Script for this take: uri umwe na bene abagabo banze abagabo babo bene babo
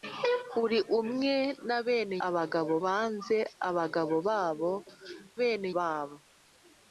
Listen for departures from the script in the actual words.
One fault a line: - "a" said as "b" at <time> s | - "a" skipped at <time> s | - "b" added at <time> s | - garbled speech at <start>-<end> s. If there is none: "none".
none